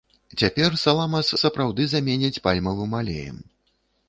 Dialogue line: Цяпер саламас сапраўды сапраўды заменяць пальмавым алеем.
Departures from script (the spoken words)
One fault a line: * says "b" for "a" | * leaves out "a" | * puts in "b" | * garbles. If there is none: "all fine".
* leaves out "сапраўды"